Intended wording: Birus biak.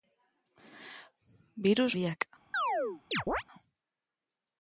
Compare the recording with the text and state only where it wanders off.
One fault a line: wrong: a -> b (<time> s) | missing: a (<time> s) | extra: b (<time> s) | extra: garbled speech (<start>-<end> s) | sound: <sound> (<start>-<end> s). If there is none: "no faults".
sound: chirp (2.5-3.4 s)